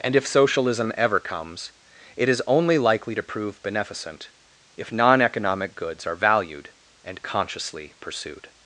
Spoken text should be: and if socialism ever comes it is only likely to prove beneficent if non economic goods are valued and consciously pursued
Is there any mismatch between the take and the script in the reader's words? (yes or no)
no